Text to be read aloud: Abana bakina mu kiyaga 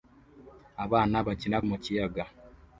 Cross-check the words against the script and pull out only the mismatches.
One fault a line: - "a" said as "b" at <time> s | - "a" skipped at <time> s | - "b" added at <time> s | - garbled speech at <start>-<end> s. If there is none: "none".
none